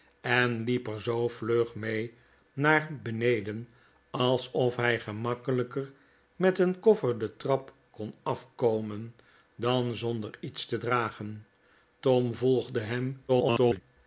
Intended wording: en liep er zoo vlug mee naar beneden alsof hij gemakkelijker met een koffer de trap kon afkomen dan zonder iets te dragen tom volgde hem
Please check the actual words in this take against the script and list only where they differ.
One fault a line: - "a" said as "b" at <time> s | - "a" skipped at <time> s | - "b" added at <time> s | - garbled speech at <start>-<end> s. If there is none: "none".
- garbled speech at 13.3-13.8 s